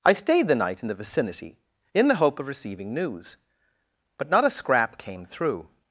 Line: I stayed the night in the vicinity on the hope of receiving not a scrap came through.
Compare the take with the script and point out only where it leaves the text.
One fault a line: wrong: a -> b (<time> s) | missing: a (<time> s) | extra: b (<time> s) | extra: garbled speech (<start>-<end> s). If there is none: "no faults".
wrong: on -> in (1.9 s)
extra: news but (2.9 s)